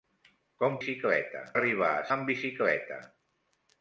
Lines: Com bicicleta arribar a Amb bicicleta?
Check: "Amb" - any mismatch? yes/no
no